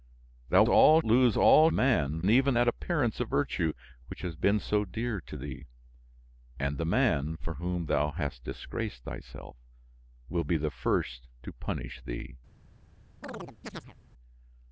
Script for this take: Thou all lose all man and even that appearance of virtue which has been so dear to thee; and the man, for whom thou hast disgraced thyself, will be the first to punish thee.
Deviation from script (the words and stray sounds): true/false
true